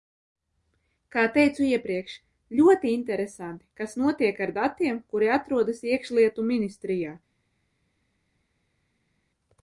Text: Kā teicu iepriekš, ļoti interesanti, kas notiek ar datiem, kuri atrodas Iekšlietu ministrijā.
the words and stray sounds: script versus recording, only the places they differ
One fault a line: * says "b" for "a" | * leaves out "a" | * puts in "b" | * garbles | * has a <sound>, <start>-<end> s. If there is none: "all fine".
all fine